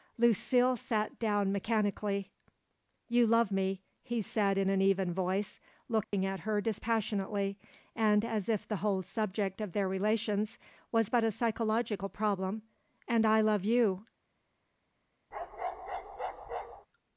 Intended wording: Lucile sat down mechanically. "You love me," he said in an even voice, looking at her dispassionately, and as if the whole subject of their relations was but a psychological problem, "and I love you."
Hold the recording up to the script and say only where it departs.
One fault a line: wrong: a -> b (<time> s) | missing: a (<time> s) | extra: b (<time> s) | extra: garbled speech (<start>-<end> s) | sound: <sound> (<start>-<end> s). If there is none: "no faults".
sound: dropout (6.0-6.1 s)
sound: bark (15.3-16.9 s)